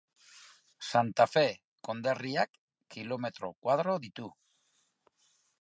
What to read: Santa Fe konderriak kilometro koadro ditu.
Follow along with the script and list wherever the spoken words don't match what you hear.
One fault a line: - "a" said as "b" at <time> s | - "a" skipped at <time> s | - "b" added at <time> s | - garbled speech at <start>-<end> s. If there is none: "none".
none